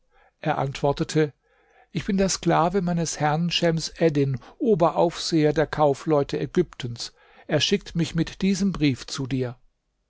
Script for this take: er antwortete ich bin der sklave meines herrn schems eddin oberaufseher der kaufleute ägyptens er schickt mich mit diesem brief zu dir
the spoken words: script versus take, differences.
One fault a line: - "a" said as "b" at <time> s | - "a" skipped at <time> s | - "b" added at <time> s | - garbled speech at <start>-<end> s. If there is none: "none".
none